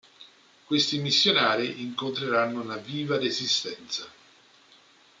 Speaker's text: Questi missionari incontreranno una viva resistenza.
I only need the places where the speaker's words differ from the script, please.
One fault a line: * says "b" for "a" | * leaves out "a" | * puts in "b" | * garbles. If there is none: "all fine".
all fine